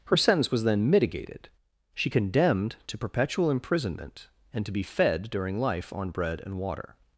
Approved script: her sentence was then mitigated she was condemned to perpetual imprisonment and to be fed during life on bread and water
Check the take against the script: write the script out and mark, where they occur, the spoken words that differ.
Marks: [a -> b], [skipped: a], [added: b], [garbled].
her sentence was then mitigated she [skipped: was] condemned to perpetual imprisonment and to be fed during life on bread and water